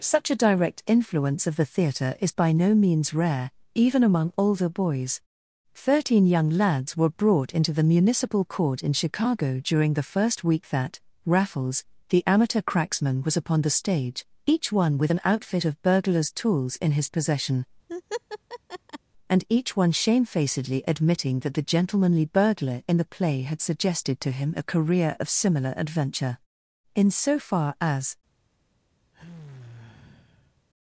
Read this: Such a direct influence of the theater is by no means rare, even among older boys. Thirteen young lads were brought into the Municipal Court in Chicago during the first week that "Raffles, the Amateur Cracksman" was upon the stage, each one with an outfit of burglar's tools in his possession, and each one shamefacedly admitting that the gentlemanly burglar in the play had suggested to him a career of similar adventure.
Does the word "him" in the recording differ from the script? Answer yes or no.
no